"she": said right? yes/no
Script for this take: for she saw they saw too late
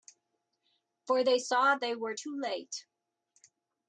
no